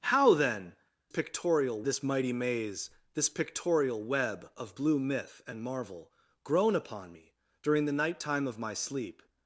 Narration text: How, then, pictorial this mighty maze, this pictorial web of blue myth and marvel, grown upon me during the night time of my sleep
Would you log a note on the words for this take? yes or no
no